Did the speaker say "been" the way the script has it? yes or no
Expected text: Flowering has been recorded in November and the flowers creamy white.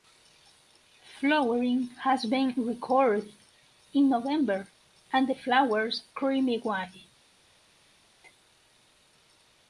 yes